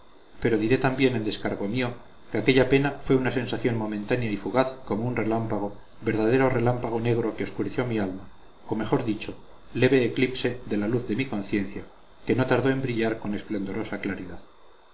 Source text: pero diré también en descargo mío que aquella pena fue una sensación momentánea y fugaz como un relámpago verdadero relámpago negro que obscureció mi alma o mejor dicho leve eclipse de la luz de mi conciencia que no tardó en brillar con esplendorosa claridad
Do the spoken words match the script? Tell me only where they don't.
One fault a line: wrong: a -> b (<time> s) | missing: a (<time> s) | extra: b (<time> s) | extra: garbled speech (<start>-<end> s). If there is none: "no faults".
no faults